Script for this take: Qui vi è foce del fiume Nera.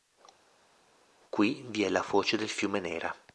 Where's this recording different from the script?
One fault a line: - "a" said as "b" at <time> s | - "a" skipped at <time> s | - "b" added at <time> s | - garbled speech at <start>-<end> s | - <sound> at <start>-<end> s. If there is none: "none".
- "la" added at 1.9 s